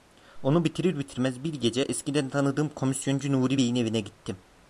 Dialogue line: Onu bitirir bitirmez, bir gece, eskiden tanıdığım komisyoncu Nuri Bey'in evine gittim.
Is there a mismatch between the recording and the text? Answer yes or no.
no